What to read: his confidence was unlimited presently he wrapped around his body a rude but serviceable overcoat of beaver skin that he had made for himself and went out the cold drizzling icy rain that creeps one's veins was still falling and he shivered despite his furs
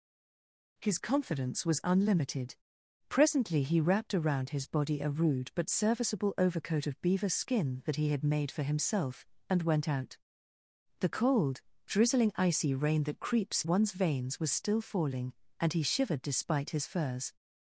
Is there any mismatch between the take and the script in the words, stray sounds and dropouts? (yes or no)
no